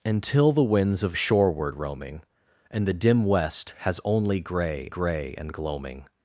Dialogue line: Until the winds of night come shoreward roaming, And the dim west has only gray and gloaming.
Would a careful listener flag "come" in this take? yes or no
yes